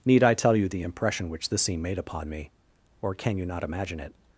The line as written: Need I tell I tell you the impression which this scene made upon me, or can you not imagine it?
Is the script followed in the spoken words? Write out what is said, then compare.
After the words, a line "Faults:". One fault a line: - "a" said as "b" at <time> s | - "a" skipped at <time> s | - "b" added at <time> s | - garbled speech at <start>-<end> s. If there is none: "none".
Need I tell you the impression which this scene made upon me, or can you not imagine it?
Faults:
- "I tell" skipped at 0.6 s